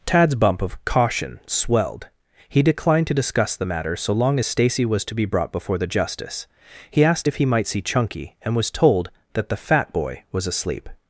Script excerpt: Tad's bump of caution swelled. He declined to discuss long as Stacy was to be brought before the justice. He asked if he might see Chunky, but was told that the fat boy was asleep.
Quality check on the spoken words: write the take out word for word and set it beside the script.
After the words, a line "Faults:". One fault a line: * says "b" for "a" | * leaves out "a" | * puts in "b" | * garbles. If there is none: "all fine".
Tad's bump of caution swelled. He declined to discuss the matter so long as Stacy was to be brought before the justice. He asked if he might see Chunky, and was told that the fat boy was asleep.
Faults:
* puts in "the matter so"
* says "and" for "but"